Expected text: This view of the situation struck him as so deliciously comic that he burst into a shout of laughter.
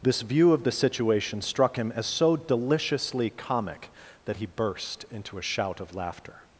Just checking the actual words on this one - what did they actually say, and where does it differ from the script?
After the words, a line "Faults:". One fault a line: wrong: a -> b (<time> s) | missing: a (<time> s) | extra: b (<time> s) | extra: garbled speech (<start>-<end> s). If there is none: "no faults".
This view of the situation struck him as so deliciously comic that he burst into a shout of laughter.
Faults:
no faults